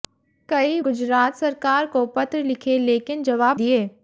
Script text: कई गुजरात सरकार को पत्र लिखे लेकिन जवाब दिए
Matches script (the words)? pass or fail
pass